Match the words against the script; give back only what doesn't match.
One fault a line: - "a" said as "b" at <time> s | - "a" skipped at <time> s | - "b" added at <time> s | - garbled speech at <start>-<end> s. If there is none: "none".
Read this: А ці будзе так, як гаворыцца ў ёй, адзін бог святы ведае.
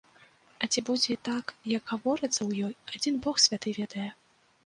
none